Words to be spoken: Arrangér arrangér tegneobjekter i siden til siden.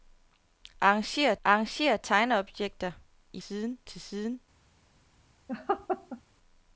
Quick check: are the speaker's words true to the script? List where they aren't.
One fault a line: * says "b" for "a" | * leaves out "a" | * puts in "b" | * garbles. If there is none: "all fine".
all fine